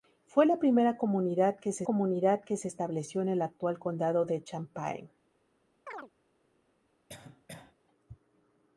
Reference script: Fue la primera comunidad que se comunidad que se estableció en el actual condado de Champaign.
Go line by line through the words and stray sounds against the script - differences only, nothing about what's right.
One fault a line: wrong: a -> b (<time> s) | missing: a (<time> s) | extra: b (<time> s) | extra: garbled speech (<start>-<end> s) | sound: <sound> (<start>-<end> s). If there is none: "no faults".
sound: chirp (5.9-6.1 s)
sound: cough (7.1-7.7 s)